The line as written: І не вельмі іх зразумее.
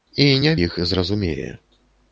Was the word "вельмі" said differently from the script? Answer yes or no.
yes